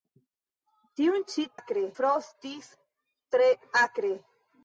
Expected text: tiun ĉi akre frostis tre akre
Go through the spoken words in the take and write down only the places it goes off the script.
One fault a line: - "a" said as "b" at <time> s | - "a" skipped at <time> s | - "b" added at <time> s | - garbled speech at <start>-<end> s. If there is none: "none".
none